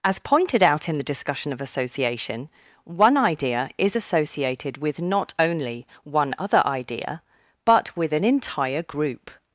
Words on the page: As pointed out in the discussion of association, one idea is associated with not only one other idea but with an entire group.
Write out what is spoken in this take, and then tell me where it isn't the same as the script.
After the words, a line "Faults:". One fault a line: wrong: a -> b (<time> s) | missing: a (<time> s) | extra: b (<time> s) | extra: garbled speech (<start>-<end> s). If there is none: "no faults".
As pointed out in the discussion of association, one idea is associated with not only one other idea but with an entire group.
Faults:
no faults